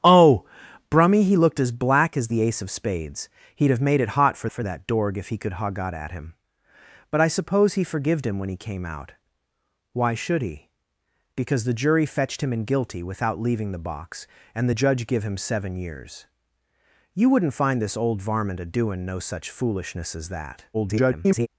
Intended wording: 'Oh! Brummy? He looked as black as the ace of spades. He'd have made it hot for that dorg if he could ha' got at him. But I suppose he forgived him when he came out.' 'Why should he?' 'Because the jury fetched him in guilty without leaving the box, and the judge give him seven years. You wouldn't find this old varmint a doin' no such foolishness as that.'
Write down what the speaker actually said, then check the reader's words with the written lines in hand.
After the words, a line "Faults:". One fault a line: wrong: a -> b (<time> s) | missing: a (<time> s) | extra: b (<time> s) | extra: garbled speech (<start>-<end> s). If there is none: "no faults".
'Oh! Brummy? He looked as black as the ace of spades. He'd have made it hot for for that dorg if he could ha' got at him. But I suppose he forgived him when he came out.' 'Why should he?' 'Because the jury fetched him in guilty without leaving the box, and the judge give him seven years. You wouldn't find this old varmint a doin' no such foolishness as that.' [garbled]
Faults:
extra: for (4.5 s)
extra: garbled speech (20.7-21.5 s)